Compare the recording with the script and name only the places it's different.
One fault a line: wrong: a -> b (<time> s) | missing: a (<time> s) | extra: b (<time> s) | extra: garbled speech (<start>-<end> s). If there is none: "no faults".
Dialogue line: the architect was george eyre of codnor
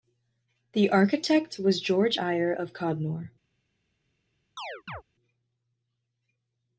no faults